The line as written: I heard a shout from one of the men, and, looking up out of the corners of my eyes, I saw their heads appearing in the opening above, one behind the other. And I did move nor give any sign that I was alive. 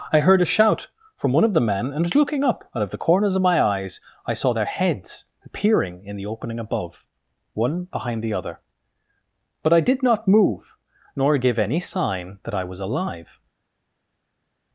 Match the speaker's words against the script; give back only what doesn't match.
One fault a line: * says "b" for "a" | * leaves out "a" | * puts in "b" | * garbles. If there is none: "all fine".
* says "But" for "And"
* puts in "not"